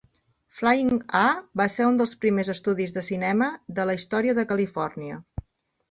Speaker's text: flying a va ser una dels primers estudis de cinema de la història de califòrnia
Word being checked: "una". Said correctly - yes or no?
no